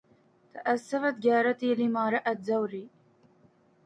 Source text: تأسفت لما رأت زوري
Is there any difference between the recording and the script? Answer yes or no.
yes